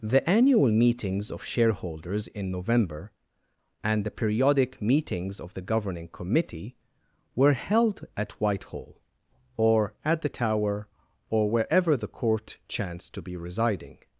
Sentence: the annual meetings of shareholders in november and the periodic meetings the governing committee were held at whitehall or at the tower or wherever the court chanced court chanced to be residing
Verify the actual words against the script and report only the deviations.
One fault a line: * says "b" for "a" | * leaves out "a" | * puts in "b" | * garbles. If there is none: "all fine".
* puts in "of"
* leaves out "court chanced"